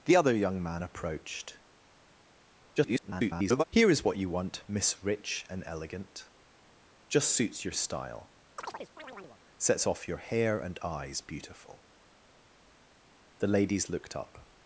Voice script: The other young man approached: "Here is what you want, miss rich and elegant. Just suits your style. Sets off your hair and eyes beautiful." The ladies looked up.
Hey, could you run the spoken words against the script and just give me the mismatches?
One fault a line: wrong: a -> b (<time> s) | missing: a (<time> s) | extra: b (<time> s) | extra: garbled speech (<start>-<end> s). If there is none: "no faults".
extra: garbled speech (2.8-3.6 s)